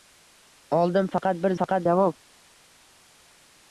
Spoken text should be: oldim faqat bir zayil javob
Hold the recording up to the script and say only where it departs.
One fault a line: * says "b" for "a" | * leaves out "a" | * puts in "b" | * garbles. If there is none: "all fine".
* says "faqat" for "zayil"